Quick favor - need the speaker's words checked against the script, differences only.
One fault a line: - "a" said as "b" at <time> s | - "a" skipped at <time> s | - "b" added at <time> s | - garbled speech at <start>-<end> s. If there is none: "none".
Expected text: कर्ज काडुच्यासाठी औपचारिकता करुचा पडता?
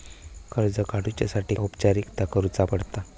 none